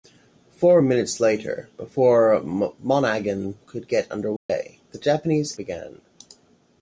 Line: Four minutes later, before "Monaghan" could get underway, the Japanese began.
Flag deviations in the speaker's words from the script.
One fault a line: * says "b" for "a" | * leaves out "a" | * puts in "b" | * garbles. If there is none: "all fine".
all fine